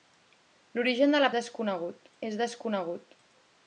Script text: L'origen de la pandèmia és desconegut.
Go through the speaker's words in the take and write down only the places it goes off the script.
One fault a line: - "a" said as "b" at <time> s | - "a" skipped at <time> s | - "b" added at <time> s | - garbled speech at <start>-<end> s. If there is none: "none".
- "pandèmia" said as "desconegut" at 1.4 s